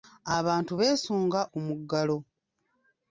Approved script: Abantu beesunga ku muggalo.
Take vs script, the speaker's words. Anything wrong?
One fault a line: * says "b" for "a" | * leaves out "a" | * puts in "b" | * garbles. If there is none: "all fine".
all fine